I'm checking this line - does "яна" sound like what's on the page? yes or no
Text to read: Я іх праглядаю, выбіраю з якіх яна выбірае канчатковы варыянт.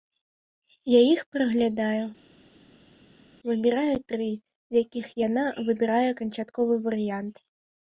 yes